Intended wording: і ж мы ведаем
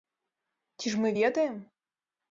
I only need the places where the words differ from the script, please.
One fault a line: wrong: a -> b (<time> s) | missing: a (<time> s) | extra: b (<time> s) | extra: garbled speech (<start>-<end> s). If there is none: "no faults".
wrong: і -> ці (0.8 s)